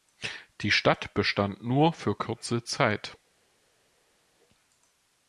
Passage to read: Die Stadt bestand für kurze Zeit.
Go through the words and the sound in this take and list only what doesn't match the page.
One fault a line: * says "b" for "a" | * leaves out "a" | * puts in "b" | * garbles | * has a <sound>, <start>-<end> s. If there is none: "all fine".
* puts in "nur"